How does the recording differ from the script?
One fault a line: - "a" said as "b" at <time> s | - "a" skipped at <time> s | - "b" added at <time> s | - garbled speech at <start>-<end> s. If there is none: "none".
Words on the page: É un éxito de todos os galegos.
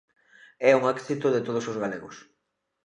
none